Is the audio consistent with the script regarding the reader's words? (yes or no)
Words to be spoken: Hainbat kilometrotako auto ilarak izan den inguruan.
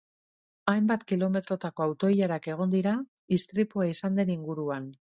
no